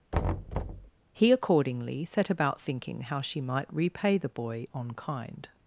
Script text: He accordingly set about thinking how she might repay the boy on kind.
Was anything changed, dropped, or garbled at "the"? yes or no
no